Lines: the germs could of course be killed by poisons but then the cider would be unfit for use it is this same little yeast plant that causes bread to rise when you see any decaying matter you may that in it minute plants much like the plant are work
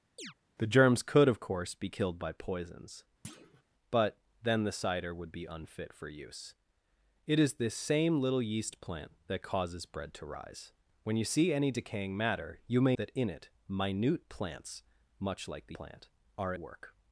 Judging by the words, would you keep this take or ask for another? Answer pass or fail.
pass